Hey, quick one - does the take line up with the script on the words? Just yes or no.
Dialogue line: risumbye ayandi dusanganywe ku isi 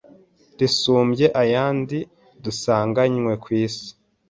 yes